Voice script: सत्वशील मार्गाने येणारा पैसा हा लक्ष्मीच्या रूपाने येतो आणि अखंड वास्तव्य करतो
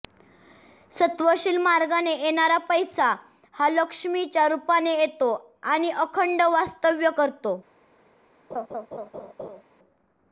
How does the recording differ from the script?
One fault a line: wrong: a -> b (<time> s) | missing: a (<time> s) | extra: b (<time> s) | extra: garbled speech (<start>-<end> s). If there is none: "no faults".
no faults